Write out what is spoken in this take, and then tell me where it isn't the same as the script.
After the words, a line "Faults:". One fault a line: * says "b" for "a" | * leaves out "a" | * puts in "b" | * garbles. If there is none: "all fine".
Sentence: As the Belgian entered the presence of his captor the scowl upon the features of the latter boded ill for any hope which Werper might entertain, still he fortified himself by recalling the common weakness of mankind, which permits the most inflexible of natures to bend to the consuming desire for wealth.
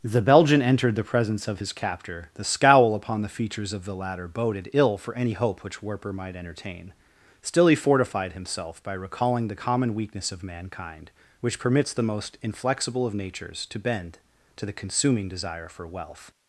the Belgian entered the presence of his captor the scowl upon the features of the latter boded ill for any hope which Werper might entertain, still he fortified himself by recalling the common weakness of mankind, which permits the most inflexible of natures to bend to the consuming desire for wealth.
Faults:
* leaves out "As"